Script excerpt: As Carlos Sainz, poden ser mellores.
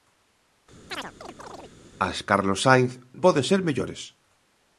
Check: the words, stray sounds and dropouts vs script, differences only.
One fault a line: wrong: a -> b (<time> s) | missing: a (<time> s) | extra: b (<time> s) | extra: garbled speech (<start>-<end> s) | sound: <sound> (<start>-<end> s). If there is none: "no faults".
sound: chirp (0.9-1.8 s)